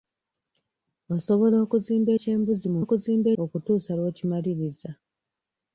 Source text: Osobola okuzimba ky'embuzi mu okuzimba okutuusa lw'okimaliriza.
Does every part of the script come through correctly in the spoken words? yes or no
yes